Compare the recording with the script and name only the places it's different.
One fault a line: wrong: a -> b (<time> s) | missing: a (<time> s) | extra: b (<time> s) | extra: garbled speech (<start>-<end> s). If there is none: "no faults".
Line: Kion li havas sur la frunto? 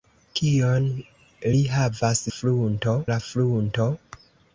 wrong: sur -> frunto (2.3 s)